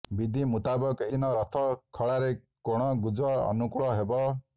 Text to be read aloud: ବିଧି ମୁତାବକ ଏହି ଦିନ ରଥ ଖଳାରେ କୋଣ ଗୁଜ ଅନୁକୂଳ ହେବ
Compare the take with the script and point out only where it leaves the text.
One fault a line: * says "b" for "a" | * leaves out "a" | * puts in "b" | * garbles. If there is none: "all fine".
* leaves out "ଏହି"